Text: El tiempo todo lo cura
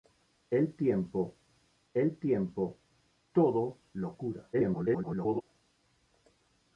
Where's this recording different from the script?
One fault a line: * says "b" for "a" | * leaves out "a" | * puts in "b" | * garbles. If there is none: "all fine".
* puts in "el tiempo"
* garbles